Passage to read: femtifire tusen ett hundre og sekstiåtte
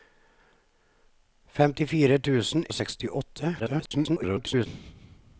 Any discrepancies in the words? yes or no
yes